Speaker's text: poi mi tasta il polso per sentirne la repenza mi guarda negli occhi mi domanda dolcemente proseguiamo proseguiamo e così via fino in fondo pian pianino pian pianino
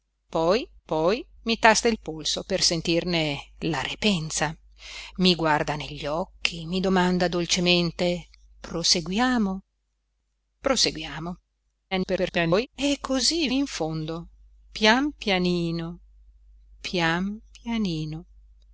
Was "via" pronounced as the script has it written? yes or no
no